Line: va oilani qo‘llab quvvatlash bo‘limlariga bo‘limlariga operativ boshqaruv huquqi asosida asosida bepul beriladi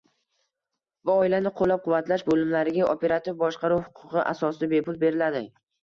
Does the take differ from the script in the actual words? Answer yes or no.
yes